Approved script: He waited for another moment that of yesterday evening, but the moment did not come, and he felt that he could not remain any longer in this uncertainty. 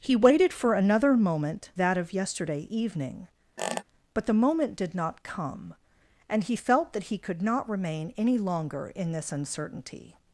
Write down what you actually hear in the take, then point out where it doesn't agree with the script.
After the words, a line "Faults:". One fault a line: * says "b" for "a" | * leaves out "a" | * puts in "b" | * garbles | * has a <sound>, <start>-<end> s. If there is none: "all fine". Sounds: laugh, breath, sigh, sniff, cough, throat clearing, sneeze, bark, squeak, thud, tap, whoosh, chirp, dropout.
He waited for another moment that of yesterday evening, but the moment did not come, and he felt that he could not remain any longer in this uncertainty.
Faults:
* has a squeak, 3.6-3.8 s